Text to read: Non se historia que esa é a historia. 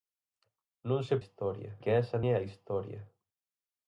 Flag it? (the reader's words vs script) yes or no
no